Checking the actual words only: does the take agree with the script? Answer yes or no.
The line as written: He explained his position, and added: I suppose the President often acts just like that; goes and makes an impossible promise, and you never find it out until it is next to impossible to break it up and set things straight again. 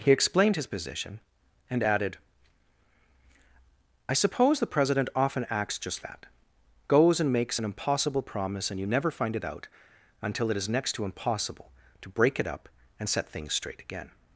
no